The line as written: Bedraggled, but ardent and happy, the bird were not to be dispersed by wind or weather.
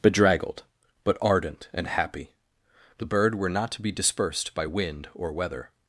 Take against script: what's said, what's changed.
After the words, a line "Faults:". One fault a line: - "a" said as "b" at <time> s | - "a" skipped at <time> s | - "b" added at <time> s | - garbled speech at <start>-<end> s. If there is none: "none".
Bedraggled, but ardent and happy, the bird were not to be dispersed by wind or weather.
Faults:
none